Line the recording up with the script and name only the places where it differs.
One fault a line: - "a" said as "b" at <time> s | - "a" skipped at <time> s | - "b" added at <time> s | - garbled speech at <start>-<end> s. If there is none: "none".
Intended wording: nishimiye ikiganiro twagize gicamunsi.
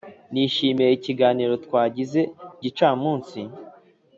none